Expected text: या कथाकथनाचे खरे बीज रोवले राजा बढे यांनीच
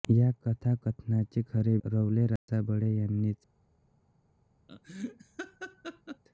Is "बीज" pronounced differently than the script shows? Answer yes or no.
yes